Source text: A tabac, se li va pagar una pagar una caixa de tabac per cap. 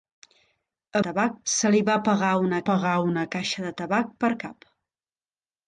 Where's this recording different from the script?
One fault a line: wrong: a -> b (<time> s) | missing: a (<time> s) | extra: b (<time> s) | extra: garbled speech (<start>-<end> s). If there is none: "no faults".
no faults